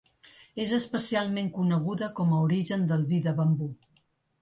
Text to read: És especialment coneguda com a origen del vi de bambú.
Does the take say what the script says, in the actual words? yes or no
yes